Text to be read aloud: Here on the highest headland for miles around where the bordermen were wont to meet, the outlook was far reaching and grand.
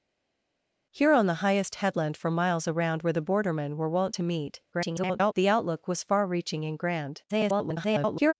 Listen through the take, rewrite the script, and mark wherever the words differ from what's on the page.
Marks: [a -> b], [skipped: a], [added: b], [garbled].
Here on the highest headland for miles around where the bordermen were wont to meet, [garbled] the outlook was far reaching and grand. [garbled]